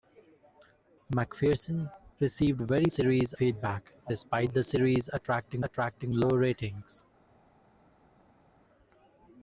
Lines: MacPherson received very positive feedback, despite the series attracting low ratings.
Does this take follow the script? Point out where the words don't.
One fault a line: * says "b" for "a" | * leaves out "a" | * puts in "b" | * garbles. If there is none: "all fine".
* says "series" for "positive"
* puts in "attracting"